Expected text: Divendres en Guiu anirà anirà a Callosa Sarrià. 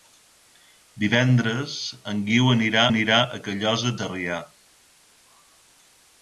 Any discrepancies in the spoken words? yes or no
no